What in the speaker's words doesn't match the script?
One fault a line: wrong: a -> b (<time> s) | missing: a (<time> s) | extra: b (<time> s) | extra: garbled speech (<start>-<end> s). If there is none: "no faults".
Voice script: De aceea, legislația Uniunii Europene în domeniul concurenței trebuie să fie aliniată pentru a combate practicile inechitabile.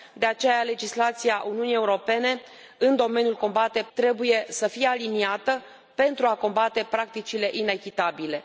wrong: concurenței -> combate (3.3 s)